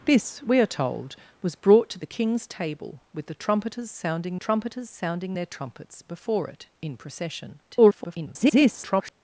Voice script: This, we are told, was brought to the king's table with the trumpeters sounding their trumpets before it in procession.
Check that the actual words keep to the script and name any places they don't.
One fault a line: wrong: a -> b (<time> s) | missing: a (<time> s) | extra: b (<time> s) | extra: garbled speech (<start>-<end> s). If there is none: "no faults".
extra: trumpeters sounding (4.4 s)
extra: garbled speech (7.7-9.1 s)